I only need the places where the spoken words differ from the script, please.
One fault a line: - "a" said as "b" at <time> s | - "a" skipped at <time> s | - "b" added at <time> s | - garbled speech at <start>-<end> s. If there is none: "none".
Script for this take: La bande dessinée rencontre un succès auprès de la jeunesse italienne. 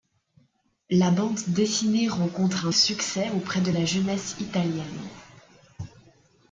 none